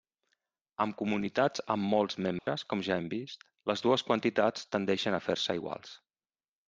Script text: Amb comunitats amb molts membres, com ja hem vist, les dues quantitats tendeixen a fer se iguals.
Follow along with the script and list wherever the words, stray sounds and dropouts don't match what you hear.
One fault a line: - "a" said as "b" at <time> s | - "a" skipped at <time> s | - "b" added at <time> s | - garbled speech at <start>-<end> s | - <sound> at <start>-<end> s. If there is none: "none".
- dropout at 2.4-2.5 s